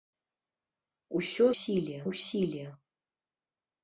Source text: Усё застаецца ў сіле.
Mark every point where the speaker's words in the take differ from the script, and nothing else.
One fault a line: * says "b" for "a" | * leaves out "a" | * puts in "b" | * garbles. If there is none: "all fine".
* says "сіле" for "застаецца"